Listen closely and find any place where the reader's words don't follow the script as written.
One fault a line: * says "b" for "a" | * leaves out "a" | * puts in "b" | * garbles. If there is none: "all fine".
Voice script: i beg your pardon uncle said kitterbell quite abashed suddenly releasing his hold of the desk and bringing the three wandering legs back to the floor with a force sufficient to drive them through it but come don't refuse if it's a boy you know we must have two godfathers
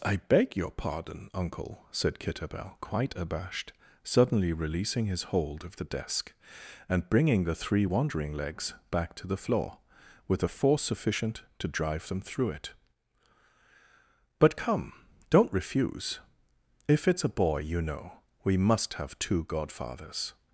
all fine